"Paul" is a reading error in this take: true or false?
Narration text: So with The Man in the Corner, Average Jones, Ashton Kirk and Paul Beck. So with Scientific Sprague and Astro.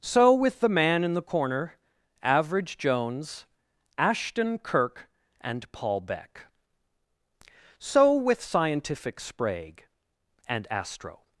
false